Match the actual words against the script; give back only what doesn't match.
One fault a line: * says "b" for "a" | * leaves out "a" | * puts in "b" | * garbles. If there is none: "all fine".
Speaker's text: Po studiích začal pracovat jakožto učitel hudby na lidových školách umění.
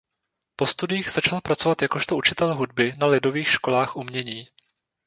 all fine